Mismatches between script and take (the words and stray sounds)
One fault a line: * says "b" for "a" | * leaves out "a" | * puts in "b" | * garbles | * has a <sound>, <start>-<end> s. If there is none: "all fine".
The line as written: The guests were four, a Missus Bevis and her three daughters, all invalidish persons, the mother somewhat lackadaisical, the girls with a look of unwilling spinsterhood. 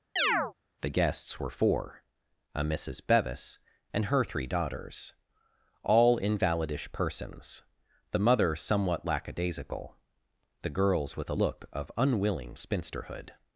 * has a chirp, 0.2-0.5 s